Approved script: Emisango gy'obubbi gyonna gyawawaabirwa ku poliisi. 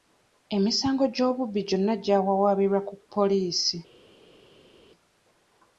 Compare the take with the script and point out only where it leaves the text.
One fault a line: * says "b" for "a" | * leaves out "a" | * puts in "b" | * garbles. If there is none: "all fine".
all fine